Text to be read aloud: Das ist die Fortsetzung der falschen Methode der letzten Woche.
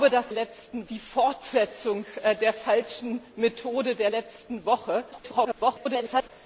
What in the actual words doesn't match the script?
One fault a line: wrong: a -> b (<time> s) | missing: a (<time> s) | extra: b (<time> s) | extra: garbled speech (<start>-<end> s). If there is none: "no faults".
wrong: ist -> letzten (0.3 s)
extra: garbled speech (5.1-6.3 s)